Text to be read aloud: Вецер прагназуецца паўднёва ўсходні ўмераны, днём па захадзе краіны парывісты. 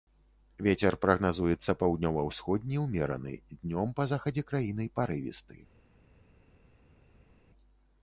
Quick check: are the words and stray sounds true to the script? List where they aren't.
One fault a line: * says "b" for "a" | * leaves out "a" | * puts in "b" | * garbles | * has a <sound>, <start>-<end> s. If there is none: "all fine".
all fine